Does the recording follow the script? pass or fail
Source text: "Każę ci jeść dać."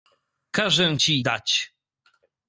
fail